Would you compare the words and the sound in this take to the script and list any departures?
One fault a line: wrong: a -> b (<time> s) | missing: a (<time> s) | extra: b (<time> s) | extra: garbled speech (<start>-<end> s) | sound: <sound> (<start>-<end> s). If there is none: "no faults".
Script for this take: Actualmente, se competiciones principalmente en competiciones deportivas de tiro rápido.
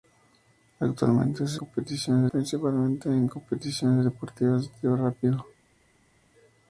no faults